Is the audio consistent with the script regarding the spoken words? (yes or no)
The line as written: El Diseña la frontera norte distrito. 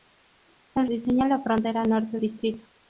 yes